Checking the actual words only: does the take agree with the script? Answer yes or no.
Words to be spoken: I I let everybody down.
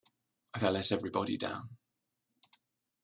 yes